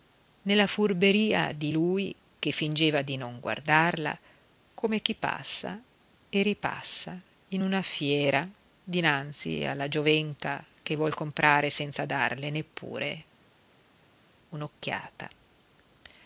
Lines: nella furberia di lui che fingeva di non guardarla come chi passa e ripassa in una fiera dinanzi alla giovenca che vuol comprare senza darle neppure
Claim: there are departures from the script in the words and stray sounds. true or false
false